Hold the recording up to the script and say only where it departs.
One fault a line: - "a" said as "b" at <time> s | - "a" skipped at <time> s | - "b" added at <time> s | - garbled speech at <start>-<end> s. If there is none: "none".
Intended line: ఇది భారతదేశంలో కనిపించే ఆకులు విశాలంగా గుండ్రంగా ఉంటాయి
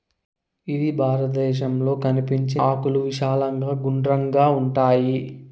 none